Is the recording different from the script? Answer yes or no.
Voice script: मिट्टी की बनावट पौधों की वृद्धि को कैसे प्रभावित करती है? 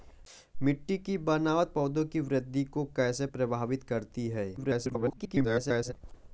yes